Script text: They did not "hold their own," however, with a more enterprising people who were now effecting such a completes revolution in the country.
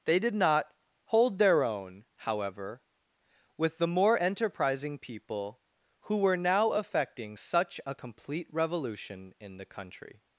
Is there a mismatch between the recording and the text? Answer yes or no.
yes